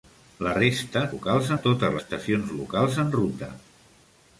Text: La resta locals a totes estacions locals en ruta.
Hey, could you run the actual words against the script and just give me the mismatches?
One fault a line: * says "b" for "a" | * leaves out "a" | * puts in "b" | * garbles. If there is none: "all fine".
all fine